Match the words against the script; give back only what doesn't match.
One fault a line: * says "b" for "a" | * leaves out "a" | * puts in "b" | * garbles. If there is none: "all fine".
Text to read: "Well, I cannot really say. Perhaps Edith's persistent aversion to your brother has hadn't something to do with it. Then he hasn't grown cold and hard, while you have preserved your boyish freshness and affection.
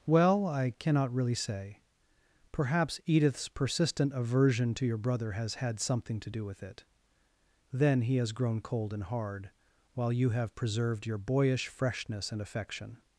* says "had" for "hadn't"
* says "has" for "hasn't"